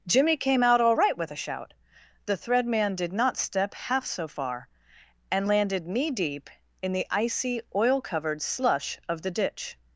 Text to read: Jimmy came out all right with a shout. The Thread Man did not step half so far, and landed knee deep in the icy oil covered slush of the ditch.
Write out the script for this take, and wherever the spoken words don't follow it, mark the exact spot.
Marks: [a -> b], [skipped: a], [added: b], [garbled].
Jimmy came out all right with a shout. The Thread Man did not step half so far, and landed knee deep in the icy oil covered slush of the ditch.